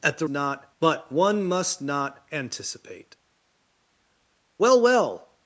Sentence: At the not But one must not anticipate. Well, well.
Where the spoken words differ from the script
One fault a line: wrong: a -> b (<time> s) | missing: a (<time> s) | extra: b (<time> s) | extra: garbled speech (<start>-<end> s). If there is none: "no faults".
no faults